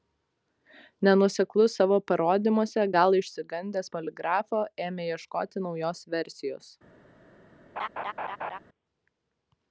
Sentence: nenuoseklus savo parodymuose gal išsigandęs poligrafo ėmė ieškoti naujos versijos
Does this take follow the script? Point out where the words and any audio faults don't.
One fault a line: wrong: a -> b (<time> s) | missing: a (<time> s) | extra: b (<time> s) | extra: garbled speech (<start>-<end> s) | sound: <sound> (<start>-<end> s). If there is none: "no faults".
sound: laugh (7.8-8.6 s)